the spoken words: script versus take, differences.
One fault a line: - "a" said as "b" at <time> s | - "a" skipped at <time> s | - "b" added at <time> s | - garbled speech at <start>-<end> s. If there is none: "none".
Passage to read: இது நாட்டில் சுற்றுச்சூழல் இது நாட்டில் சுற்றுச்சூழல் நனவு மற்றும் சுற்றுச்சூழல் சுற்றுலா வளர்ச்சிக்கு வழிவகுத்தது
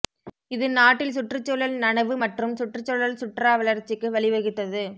- "இது நாட்டில் சுற்றுச்சூழல்" skipped at 1.8 s